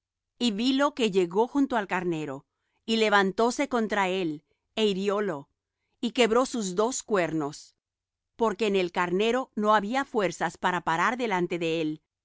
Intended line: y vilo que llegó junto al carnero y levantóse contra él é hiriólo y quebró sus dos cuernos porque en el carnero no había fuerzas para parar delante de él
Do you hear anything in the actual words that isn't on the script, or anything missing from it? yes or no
no